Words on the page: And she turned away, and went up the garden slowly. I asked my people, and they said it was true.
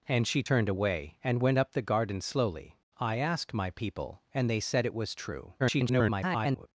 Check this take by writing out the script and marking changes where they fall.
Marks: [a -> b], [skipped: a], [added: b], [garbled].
And she turned away, and went up the garden slowly. I asked my people, and they said it was true. [garbled]